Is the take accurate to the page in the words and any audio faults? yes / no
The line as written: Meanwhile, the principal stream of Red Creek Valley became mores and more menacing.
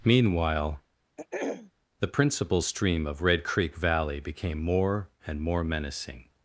no